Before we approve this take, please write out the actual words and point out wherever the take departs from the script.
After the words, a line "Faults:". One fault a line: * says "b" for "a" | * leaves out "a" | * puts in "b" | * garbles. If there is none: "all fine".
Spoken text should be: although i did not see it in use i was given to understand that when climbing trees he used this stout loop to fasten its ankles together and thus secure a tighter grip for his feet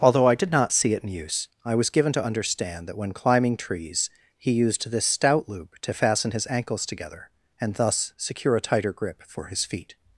although i did not see it in use i was given to understand that when climbing trees he used this stout loop to fasten his ankles together and thus secure a tighter grip for his feet
Faults:
* says "his" for "its"